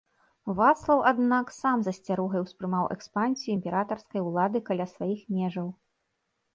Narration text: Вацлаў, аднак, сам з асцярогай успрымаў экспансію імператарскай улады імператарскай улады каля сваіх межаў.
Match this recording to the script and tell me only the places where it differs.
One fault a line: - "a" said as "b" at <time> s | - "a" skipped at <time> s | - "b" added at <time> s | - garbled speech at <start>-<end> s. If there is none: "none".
- "імператарскай улады" skipped at 4.6 s